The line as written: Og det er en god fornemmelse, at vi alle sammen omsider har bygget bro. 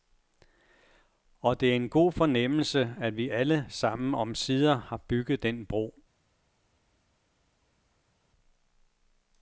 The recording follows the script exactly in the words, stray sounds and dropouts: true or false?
false